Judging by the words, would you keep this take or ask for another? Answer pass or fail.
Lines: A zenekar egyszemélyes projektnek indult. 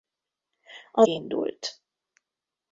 fail